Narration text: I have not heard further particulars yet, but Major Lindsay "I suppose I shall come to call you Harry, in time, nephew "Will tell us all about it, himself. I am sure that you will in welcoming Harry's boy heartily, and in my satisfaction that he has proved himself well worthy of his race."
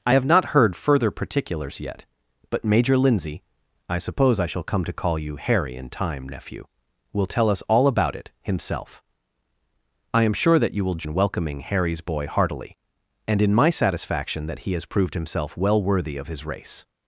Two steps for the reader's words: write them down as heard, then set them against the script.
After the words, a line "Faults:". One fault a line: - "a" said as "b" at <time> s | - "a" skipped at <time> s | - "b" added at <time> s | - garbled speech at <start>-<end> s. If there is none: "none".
I have not heard further particulars yet, but Major Lindsay "I suppose I shall come to call you Harry, in time, nephew "Will tell us all about it, himself. I am sure that you will in welcoming Harry's boy heartily, and in my satisfaction that he has proved himself well worthy of his race."
Faults:
none